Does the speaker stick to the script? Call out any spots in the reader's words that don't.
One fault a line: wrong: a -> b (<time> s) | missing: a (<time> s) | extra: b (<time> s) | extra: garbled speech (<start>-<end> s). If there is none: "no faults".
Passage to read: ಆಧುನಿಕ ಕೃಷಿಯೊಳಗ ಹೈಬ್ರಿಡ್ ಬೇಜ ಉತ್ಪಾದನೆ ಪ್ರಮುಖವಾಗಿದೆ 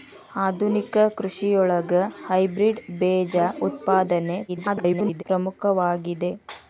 extra: garbled speech (4.5-5.2 s)